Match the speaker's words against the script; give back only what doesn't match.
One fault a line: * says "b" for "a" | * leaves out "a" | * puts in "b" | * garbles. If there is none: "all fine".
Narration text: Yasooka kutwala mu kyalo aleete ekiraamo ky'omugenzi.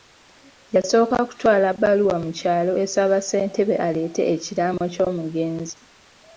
* puts in "bbaluwa"
* puts in "esaba Ssentebe"